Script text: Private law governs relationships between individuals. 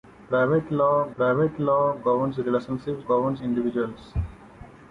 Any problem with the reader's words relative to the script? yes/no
yes